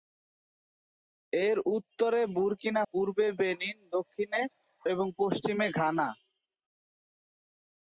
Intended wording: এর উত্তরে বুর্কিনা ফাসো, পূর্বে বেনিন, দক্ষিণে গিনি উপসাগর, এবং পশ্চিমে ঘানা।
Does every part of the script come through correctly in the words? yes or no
no